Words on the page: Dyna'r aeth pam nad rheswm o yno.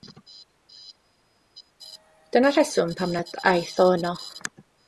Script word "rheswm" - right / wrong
wrong